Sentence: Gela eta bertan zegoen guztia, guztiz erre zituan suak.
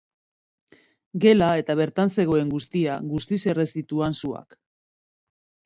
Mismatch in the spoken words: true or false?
false